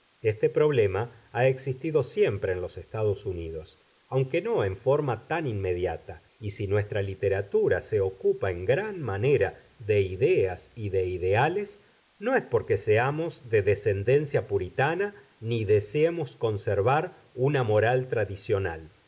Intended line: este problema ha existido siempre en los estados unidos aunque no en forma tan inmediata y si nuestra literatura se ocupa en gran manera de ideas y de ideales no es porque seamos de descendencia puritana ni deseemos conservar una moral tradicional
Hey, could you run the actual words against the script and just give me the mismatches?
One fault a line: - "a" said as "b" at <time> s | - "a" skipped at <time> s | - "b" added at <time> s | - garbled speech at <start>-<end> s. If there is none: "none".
none